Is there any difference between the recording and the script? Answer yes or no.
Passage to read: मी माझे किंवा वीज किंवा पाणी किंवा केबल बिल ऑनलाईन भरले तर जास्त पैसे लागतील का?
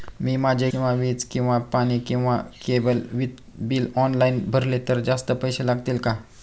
no